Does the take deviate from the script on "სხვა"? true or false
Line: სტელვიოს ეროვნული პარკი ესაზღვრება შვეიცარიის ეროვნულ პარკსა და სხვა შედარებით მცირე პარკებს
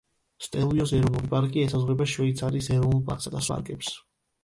true